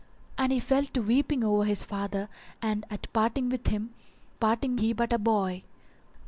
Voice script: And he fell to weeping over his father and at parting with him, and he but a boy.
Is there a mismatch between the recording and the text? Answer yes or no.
yes